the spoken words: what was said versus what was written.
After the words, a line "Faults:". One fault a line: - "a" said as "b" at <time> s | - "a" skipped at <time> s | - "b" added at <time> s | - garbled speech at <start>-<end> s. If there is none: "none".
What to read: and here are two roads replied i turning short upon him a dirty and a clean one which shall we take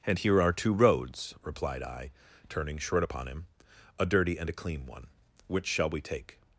and here are two roads replied i turning short upon him a dirty and a clean one which shall we take
Faults:
none